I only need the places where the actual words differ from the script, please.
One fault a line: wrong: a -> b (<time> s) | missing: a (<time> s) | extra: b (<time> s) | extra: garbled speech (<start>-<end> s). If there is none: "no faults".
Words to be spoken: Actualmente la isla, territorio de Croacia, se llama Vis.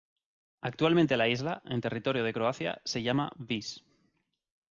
extra: en (1.6 s)